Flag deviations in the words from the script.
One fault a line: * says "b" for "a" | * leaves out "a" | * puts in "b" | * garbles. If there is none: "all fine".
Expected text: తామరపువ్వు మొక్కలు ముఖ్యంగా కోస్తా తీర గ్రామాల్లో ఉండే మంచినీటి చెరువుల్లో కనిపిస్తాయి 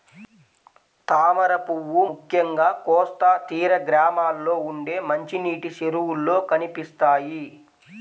* leaves out "మొక్కలు"